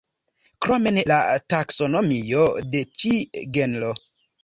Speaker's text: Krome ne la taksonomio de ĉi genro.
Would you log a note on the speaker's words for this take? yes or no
no